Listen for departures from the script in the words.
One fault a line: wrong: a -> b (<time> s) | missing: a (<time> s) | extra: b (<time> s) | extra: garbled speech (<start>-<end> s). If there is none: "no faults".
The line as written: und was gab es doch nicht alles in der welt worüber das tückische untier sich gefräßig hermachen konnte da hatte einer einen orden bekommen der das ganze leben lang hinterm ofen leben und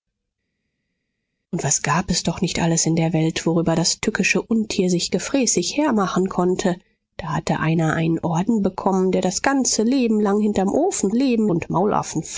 no faults